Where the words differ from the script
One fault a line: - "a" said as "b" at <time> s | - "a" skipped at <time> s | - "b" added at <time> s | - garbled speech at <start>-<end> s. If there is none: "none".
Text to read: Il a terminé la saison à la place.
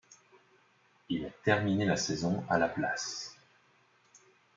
none